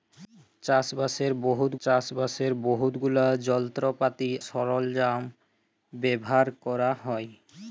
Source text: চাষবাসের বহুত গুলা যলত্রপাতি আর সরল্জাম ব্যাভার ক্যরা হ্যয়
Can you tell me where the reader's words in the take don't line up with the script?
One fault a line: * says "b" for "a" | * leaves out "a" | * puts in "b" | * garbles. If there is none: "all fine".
* puts in "চাষবাসের বহুত"
* leaves out "আর"